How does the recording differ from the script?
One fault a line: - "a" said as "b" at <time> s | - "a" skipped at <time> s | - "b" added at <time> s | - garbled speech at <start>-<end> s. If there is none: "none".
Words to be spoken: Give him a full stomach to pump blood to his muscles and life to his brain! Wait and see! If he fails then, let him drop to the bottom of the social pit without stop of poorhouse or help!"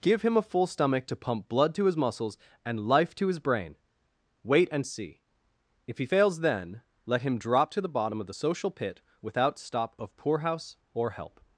none